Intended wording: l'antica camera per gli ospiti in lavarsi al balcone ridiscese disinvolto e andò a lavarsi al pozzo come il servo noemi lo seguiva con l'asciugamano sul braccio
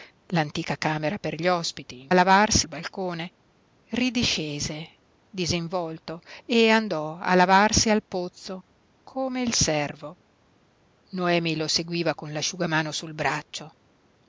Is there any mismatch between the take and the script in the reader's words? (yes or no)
no